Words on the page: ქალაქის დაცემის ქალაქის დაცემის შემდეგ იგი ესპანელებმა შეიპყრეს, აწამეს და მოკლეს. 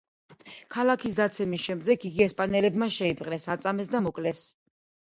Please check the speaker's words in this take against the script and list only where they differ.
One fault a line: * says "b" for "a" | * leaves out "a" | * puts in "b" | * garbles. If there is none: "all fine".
* leaves out "ქალაქის დაცემის"